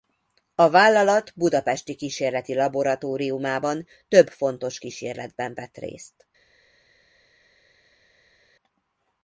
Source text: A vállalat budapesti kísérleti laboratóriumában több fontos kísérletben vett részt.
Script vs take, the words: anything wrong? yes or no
no